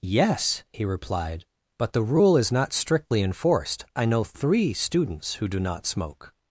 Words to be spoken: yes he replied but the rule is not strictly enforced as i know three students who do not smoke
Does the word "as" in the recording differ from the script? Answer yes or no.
yes